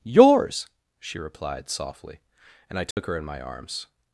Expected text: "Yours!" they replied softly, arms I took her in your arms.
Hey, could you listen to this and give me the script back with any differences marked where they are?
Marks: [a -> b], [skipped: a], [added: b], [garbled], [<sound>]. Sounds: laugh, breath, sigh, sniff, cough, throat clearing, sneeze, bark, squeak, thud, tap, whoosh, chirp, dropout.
"Yours!" [they -> she] replied softly, [arms -> and] I took [dropout] her in [your -> my] arms.